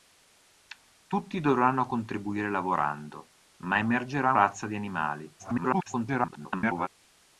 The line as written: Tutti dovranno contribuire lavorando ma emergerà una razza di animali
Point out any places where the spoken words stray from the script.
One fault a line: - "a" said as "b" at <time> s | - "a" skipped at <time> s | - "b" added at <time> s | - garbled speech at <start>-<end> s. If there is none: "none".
- "una" skipped at 4.3 s
- garbled speech at 5.4-6.9 s